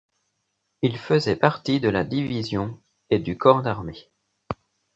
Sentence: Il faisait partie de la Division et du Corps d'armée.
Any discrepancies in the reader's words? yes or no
no